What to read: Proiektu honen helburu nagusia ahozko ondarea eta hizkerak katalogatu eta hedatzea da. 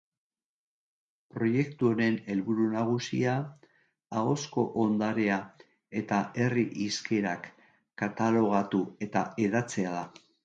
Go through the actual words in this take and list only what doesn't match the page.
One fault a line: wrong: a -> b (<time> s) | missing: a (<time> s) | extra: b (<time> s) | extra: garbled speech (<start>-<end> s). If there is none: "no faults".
extra: herri (6.4 s)